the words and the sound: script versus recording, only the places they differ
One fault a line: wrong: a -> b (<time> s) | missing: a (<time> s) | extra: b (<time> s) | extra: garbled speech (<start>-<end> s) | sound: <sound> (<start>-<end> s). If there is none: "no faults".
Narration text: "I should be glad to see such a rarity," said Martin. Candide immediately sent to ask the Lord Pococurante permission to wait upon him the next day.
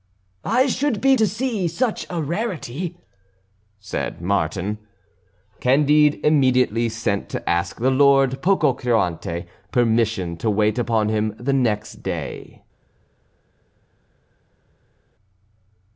missing: glad (1.1 s)